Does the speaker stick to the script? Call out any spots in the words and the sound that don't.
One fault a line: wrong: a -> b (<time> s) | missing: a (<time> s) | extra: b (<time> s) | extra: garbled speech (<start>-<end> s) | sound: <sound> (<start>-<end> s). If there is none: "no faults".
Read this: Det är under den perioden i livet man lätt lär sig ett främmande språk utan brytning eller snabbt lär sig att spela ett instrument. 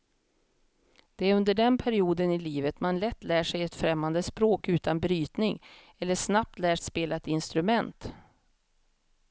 missing: sig (6.8 s)